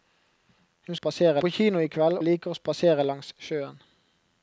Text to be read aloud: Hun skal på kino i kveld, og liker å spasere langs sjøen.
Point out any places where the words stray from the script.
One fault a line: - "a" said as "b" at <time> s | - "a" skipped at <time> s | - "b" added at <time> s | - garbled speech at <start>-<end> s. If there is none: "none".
- "skal" said as "spasere" at 0.9 s
- "og" skipped at 2.2 s